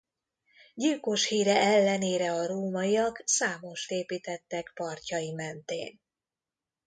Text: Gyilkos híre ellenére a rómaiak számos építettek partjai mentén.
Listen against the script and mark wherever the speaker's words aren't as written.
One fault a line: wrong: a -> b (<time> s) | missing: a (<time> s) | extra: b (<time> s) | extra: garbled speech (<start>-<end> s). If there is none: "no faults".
no faults